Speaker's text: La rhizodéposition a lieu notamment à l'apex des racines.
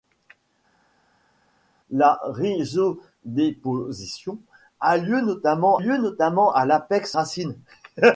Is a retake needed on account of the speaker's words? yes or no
yes